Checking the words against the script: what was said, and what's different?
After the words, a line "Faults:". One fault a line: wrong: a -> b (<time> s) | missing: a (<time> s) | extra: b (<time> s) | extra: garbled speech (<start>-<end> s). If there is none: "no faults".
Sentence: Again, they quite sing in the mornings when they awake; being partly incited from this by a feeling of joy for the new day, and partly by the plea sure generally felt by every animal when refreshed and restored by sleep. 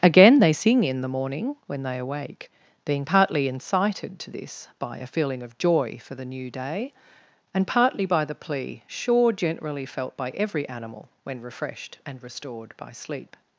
Again, they sing in the morning when they awake; being partly incited to this by a feeling of joy for the new day, and partly by the plea sure generally felt by every animal when refreshed and restored by sleep.
Faults:
missing: quite (0.5 s)
wrong: mornings -> morning (1.1 s)
wrong: from -> to (4.2 s)